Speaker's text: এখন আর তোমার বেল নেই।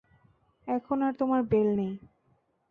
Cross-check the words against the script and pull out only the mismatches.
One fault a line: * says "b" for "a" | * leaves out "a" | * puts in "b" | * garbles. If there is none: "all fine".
all fine